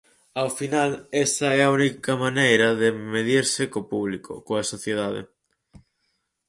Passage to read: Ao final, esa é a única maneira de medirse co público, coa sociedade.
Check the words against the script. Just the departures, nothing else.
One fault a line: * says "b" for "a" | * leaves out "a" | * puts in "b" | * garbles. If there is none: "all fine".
all fine